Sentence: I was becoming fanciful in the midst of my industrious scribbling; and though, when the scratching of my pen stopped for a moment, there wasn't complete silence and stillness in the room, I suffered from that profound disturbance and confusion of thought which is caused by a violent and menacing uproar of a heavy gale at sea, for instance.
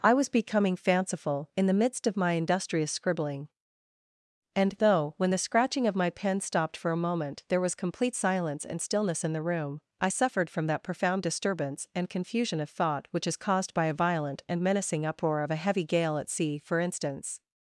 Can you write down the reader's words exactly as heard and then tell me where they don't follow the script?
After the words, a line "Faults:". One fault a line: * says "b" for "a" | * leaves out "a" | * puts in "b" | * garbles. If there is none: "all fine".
I was becoming fanciful in the midst of my industrious scribbling; and though, when the scratching of my pen stopped for a moment, there was complete silence and stillness in the room, I suffered from that profound disturbance and confusion of thought which is caused by a violent and menacing uproar of a heavy gale at sea, for instance.
Faults:
* says "was" for "wasn't"